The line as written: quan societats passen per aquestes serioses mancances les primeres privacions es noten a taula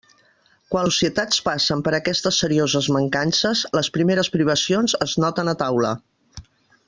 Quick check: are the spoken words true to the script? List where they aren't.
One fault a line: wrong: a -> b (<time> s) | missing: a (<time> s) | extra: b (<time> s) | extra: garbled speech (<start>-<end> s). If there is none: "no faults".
no faults